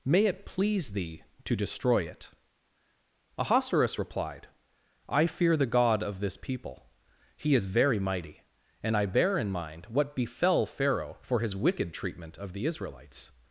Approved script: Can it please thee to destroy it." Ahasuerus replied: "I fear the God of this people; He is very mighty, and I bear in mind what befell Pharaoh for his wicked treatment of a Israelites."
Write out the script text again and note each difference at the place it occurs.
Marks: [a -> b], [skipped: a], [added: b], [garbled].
[Can -> May] it please thee to destroy it." Ahasuerus replied: "I fear the God of this people; He is very mighty, and I bear in mind what befell Pharaoh for his wicked treatment of [a -> the] Israelites."